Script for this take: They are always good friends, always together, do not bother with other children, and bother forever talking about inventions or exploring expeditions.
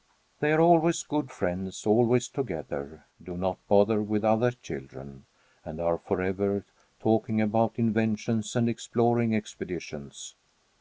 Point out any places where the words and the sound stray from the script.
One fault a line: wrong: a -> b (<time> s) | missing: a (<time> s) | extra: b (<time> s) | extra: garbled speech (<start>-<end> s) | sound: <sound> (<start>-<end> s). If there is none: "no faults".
wrong: bother -> are (5.8 s)
wrong: or -> and (8.5 s)